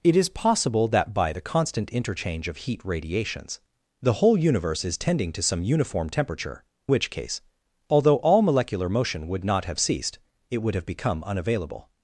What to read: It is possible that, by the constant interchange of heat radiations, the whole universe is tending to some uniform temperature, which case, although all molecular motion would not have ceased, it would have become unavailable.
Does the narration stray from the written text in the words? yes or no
no